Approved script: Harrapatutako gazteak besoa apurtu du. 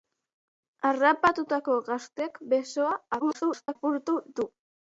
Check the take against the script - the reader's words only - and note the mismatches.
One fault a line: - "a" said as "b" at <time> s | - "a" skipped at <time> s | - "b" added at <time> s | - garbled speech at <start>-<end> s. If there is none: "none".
- garbled speech at 3.2-3.8 s